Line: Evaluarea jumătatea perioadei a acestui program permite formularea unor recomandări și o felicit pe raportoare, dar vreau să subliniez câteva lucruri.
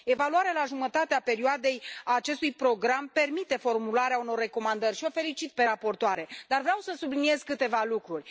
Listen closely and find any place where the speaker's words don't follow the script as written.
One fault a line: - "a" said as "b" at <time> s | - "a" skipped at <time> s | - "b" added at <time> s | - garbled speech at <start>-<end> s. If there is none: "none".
- "la" added at 0.5 s